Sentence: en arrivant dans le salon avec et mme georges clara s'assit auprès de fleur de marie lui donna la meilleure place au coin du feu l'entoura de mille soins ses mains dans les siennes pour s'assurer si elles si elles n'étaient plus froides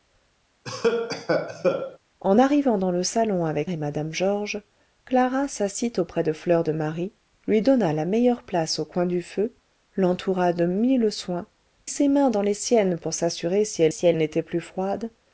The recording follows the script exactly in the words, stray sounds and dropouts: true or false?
false